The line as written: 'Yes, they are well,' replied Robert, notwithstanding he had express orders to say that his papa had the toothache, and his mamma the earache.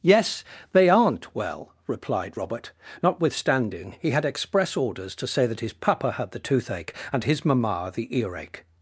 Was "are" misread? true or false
true